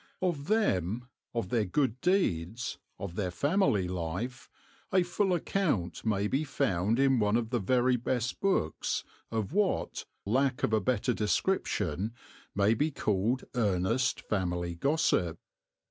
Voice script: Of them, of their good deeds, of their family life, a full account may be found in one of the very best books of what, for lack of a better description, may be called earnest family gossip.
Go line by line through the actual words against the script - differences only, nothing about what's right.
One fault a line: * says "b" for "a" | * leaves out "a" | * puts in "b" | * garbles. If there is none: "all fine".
* leaves out "for"